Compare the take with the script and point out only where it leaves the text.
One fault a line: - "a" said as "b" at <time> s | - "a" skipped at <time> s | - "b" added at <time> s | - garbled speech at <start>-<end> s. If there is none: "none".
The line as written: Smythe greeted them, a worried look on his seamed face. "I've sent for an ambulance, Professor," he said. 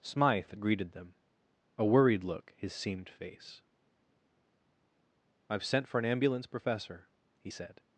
- "on" skipped at 2.5 s